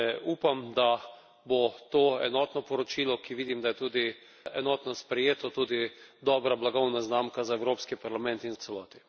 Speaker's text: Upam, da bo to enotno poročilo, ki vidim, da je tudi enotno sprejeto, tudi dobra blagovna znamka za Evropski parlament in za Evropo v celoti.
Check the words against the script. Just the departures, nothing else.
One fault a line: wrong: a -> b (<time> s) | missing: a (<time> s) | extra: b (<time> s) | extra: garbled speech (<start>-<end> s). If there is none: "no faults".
missing: za Evropo (8.5 s)